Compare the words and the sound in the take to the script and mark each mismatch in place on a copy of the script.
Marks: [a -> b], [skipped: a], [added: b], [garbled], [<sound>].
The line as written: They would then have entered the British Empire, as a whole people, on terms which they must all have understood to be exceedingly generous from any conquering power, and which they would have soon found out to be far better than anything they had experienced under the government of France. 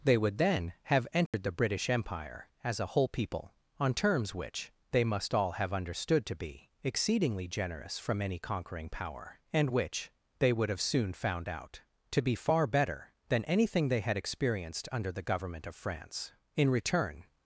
They would then have entered [dropout] the British Empire, as a whole people, on terms which they must all have understood to be exceedingly generous from any conquering power, and which they would have soon found out to be far better than anything they had experienced under the government of France. [added: In return]